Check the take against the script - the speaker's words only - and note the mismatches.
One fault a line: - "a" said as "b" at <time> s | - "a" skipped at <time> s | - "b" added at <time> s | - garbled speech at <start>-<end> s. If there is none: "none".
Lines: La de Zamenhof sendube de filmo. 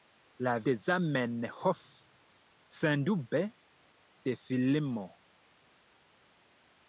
none